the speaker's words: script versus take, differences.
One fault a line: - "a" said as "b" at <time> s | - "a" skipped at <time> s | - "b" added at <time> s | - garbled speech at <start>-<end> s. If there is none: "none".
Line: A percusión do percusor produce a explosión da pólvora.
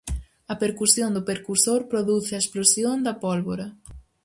none